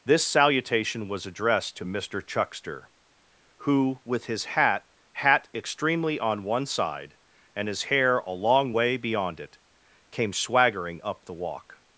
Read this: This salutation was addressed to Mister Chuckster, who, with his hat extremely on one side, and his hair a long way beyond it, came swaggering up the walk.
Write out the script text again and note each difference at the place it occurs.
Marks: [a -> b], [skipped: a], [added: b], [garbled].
This salutation was addressed to Mister Chuckster, who, with his hat [added: hat] extremely on one side, and his hair a long way beyond it, came swaggering up the walk.